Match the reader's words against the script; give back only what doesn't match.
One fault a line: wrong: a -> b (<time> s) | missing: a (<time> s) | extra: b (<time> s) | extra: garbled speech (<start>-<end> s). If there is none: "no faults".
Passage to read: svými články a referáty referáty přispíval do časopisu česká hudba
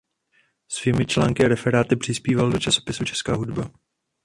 missing: referáty (1.9 s)